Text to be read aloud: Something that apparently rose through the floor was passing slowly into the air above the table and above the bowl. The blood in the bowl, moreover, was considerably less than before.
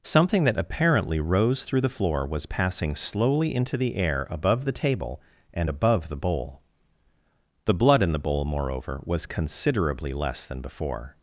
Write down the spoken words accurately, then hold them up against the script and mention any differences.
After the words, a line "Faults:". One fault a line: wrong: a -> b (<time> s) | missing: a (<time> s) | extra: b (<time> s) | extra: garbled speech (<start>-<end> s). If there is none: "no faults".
Something that apparently rose through the floor was passing slowly into the air above the table and above the bowl. The blood in the bowl, moreover, was considerably less than before.
Faults:
no faults